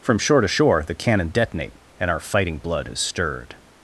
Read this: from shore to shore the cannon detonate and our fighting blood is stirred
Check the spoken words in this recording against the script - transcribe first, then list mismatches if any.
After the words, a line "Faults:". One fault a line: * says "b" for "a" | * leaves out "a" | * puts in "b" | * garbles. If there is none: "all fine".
from shore to shore the cannon detonate and our fighting blood is stirred
Faults:
all fine